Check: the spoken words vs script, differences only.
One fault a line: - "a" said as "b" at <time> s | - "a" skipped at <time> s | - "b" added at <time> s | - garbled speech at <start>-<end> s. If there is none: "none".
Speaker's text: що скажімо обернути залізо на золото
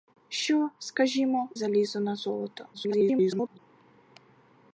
- "обернути" skipped at 1.5 s
- garbled speech at 2.7-3.6 s